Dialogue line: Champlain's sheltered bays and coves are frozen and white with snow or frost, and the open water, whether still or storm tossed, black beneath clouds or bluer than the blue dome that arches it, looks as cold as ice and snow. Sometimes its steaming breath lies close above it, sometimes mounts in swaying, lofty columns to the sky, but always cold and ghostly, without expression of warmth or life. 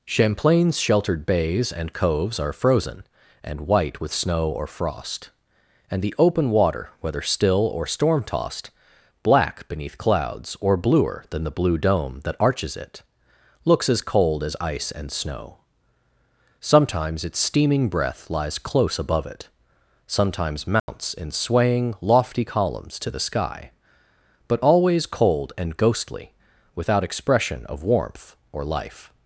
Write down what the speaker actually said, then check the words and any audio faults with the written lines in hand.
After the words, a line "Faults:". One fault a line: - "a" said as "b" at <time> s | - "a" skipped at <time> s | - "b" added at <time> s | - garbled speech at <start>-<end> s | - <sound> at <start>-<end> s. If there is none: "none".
Champlain's sheltered bays and coves are frozen and white with snow or frost, and the open water, whether still or storm tossed, black beneath clouds or bluer than the blue dome that arches it, looks as cold as ice and snow. Sometimes its steaming breath lies close above it, sometimes mounts in swaying, lofty columns to the sky, but always cold and ghostly, without expression of warmth or life.
Faults:
- dropout at 20.8-20.9 s